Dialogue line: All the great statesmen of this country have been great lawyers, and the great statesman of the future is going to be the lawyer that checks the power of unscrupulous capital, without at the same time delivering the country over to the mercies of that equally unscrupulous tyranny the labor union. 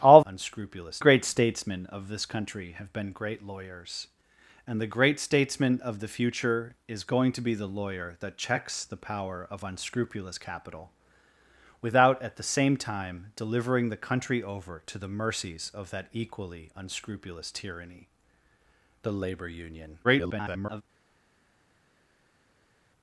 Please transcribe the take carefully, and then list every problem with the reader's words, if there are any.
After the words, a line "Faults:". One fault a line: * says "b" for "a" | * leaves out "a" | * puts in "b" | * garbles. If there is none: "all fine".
All unscrupulous great statesmen of this country have been great lawyers, and the great statesman of the future is going to be the lawyer that checks the power of unscrupulous capital, without at the same time delivering the country over to the mercies of that equally unscrupulous tyranny the labor union. [garbled]
Faults:
* says "unscrupulous" for "the"
* garbles